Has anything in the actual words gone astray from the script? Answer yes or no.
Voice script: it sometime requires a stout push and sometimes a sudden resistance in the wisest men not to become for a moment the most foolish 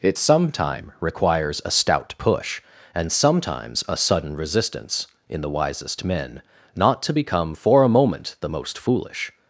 no